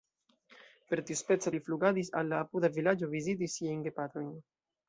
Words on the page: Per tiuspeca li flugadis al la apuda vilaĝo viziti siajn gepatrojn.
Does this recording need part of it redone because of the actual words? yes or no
no